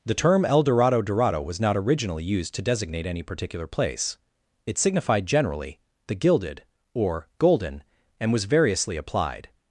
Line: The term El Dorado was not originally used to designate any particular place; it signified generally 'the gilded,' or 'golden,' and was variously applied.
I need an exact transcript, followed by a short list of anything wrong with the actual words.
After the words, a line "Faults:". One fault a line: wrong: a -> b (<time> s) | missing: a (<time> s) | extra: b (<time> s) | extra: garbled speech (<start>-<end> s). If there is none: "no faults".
The term El Dorado Dorado was not originally used to designate any particular place; it signified generally 'the gilded,' or 'golden,' and was variously applied.
Faults:
extra: Dorado (1.0 s)